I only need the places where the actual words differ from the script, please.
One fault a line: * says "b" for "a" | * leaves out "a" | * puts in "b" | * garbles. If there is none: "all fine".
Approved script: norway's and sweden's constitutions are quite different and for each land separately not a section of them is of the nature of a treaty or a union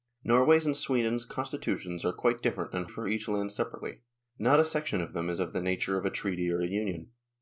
all fine